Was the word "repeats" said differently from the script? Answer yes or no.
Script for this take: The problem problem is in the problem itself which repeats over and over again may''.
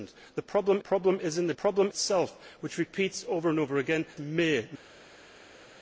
no